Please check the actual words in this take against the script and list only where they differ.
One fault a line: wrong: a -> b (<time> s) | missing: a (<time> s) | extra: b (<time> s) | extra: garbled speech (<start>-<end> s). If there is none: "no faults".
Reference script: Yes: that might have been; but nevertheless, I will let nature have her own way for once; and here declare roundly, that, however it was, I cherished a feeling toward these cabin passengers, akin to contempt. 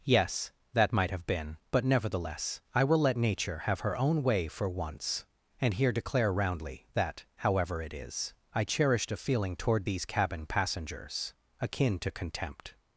wrong: was -> is (7.9 s)